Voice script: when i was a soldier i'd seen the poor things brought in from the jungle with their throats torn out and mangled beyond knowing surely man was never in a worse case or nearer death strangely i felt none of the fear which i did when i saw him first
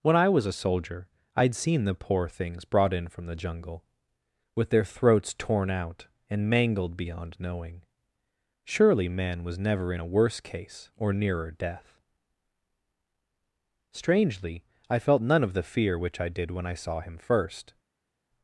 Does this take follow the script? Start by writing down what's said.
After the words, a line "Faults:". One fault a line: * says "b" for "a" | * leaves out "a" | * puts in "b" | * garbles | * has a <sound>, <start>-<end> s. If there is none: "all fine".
when i was a soldier i'd seen the poor things brought in from the jungle with their throats torn out and mangled beyond knowing surely man was never in a worse case or nearer death strangely i felt none of the fear which i did when i saw him first
Faults:
all fine